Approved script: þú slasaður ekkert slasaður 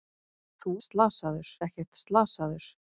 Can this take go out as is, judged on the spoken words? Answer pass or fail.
pass